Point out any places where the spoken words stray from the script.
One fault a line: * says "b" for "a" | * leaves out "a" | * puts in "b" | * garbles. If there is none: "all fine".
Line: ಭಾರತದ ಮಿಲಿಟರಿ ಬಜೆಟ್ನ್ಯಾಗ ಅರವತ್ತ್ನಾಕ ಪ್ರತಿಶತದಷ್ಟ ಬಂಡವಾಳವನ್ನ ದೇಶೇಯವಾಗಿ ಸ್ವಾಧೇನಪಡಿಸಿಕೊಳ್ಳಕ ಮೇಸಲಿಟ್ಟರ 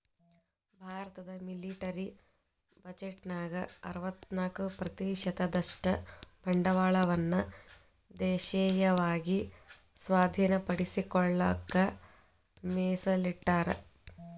all fine